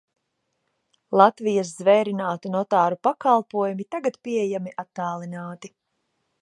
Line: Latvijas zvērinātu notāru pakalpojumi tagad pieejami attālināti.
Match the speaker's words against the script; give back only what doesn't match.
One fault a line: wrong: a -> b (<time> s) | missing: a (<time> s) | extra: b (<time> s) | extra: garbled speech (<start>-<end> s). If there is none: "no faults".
no faults